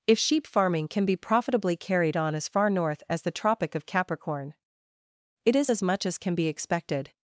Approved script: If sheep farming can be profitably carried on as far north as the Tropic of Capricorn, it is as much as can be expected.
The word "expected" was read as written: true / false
true